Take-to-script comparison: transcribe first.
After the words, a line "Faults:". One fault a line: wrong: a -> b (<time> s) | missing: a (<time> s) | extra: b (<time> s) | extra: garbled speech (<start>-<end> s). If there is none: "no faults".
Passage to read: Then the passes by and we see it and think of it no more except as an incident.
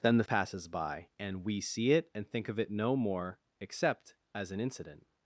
Then the passes by and we see it and think of it no more except as an incident.
Faults:
no faults